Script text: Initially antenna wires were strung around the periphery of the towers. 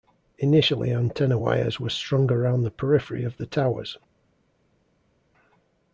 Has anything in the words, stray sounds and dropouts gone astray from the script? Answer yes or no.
no